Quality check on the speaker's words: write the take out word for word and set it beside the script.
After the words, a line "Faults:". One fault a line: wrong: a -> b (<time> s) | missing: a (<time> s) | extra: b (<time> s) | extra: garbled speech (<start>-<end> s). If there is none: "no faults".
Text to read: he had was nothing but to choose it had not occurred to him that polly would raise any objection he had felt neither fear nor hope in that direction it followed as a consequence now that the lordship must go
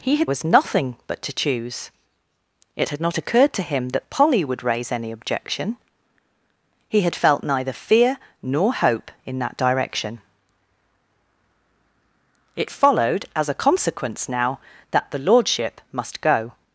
he had was nothing but to choose it had not occurred to him that polly would raise any objection he had felt neither fear nor hope in that direction it followed as a consequence now that the lordship must go
Faults:
no faults